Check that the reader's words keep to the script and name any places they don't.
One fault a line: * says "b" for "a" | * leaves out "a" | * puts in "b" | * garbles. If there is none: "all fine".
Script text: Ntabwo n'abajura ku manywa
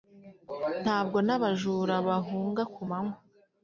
* puts in "bahunga"